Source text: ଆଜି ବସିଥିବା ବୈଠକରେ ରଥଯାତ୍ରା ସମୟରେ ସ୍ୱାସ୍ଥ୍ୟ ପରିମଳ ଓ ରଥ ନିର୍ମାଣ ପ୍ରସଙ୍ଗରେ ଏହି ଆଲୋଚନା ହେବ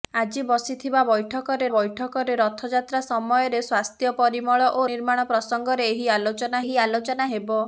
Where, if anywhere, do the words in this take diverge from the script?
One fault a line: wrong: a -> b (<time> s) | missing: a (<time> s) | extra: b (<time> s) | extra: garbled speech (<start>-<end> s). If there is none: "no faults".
extra: ବୈଠକରେ (1.7 s)
missing: ରଥ (4.9 s)
extra: ଏହି ଆଲୋଚନା (6.6 s)